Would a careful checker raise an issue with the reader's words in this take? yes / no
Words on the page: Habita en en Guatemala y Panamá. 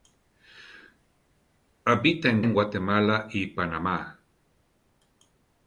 no